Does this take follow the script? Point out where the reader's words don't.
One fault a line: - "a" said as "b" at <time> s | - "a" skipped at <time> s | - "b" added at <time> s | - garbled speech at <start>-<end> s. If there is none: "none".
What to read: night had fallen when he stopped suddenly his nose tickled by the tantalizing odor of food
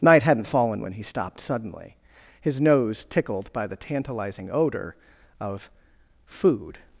- "had" said as "hadn't" at 0.2 s